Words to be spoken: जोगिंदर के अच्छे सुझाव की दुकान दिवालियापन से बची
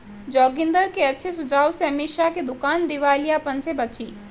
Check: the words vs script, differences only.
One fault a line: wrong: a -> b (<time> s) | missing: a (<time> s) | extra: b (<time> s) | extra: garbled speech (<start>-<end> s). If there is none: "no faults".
extra: से अमीषा (1.7 s)